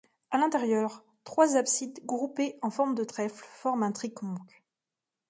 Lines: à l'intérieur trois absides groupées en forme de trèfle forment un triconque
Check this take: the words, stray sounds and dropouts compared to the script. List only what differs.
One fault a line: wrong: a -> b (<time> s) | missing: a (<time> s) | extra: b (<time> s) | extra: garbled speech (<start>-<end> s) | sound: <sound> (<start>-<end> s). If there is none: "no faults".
no faults